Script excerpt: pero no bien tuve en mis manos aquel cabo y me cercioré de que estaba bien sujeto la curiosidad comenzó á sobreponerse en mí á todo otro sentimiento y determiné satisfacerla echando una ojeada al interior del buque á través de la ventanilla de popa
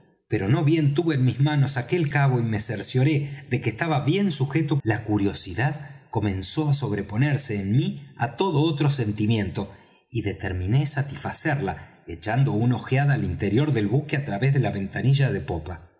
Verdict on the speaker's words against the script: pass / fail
pass